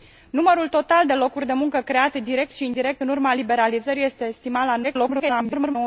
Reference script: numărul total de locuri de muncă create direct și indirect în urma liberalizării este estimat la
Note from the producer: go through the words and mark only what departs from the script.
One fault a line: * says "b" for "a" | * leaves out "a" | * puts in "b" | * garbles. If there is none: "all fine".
* garbles